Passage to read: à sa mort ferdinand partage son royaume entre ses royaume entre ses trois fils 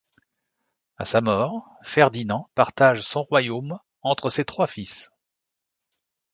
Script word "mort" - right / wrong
right